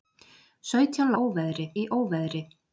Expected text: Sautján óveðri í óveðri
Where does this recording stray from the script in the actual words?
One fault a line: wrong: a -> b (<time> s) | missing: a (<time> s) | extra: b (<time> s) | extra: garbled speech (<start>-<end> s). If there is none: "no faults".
no faults